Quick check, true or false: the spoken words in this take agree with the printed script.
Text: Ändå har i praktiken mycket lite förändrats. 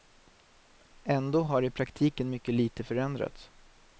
true